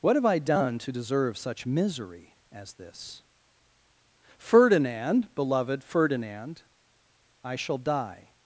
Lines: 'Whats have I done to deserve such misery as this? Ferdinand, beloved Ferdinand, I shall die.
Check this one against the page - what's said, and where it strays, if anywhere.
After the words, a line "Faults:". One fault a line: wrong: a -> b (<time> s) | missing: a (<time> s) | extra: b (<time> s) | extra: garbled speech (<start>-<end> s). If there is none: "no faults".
'What have I done to deserve such misery as this? Ferdinand, beloved Ferdinand, I shall die.
Faults:
wrong: Whats -> What (0.0 s)